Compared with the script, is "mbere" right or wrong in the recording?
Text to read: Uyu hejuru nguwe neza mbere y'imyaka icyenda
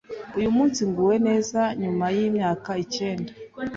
wrong